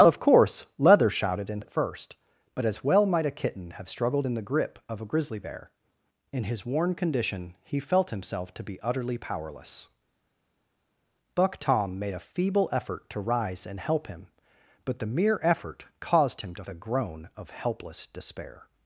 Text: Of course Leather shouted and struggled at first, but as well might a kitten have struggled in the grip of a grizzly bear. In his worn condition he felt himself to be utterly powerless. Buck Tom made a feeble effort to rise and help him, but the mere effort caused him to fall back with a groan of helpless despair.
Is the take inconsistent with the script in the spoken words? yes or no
yes